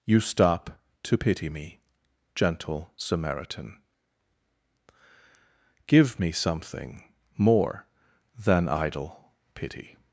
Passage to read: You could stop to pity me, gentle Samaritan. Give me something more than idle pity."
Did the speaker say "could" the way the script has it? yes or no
no